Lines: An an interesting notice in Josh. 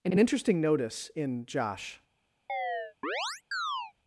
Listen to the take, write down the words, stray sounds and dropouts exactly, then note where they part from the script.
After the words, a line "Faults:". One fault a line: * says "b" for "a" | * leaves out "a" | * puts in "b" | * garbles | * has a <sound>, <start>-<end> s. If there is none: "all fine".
An an interesting notice in Josh.
Faults:
* has a chirp, 2.5-3.9 s